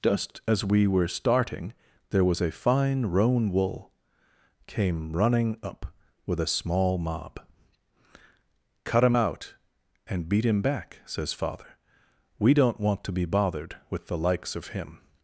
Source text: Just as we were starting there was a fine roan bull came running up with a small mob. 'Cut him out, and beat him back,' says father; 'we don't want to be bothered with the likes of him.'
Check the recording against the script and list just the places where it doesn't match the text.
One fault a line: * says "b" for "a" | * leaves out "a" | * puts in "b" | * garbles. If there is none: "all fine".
* says "wool" for "bull"